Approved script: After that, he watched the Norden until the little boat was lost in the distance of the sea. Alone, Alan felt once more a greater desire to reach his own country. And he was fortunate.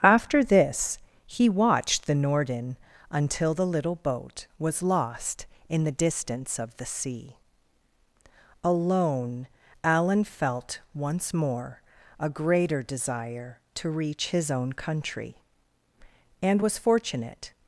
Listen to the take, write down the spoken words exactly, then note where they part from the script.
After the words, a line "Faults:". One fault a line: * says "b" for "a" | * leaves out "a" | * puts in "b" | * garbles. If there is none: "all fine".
After this, he watched the Norden until the little boat was lost in the distance of the sea. Alone, Alan felt once more a greater desire to reach his own country. And was fortunate.
Faults:
* says "this" for "that"
* leaves out "he"